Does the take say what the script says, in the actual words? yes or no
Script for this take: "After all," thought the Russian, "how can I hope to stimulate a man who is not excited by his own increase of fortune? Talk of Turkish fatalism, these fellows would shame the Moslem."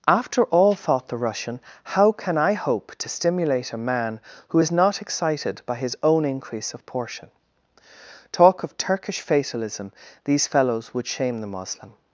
no